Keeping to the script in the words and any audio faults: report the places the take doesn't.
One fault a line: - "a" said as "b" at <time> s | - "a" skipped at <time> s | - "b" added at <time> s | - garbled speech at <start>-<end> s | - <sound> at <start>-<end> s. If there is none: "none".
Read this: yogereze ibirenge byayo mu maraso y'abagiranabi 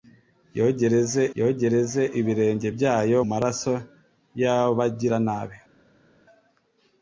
- "yogereze" added at 1.4 s
- "mu" skipped at 3.2 s